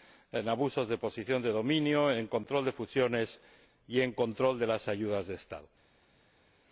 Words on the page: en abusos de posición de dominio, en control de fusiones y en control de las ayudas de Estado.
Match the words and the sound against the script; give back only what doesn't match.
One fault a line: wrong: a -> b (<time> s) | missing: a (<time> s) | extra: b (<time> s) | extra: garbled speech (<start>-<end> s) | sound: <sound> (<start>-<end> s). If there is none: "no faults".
no faults